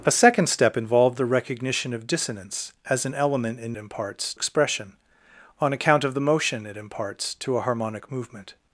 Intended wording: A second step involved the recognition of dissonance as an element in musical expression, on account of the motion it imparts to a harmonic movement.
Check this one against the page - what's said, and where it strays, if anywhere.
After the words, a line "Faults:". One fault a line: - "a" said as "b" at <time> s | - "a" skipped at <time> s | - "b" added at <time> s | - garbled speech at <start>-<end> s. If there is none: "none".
A second step involved the recognition of dissonance as an element in imparts expression, on account of the motion it imparts to a harmonic movement.
Faults:
- "musical" said as "imparts" at 3.8 s